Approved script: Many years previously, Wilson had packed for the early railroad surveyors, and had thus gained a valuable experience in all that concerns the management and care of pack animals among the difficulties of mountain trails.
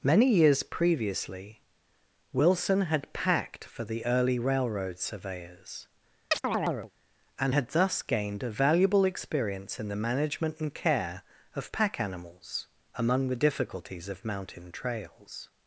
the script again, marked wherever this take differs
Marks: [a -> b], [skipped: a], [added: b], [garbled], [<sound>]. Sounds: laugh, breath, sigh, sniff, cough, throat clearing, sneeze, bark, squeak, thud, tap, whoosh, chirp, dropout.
Many years previously, Wilson had packed for the early railroad surveyors, [chirp] and had thus gained a valuable experience in [skipped: all that concerns] the management and care of pack animals among the difficulties of mountain trails.